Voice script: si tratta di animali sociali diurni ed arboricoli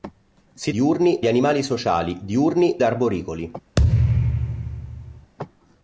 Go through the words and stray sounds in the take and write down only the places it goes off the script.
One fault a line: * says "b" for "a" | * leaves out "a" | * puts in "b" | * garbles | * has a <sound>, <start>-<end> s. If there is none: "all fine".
* says "diurni" for "tratta"
* leaves out "ed"
* has a thud, 3.8-5.3 s